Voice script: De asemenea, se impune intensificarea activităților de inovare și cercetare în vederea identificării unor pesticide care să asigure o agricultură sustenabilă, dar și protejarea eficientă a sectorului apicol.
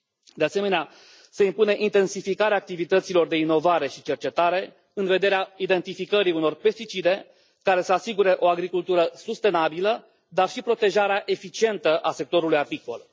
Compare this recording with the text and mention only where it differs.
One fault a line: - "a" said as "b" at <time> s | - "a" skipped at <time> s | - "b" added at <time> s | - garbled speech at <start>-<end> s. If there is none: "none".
none